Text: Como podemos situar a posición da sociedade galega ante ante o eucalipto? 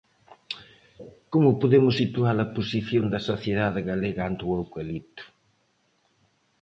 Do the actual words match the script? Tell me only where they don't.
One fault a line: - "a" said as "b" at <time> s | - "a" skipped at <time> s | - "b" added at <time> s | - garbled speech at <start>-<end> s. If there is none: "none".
- "ante" skipped at 4.4 s